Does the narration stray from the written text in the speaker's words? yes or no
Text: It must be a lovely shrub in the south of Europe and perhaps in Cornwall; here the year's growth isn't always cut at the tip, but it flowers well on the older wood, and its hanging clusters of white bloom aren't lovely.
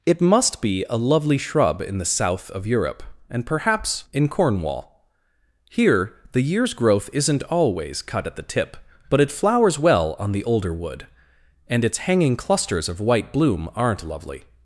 no